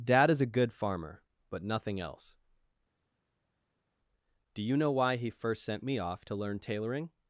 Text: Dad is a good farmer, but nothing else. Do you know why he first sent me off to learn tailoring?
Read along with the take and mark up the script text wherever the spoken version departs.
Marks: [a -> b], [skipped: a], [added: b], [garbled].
Dad is a good farmer, but nothing else. Do you know why he first sent me off to learn tailoring?